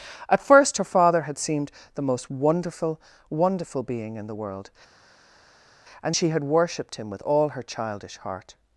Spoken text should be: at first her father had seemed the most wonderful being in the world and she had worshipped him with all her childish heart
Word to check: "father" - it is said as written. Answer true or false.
true